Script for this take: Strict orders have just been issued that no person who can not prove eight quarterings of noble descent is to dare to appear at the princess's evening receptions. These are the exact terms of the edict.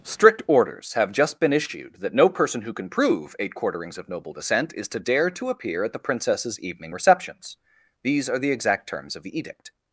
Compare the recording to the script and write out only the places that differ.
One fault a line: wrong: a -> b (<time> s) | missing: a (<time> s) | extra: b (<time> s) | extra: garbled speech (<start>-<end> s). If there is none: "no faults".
missing: not (2.9 s)